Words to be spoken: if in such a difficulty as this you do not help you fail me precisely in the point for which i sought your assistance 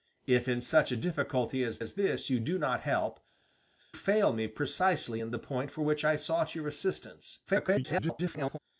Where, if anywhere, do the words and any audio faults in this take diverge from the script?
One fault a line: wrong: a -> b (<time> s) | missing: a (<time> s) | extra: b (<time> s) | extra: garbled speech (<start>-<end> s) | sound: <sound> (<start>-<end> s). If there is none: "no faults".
extra: as (1.8 s)
missing: you (3.2 s)
extra: garbled speech (7.5-8.6 s)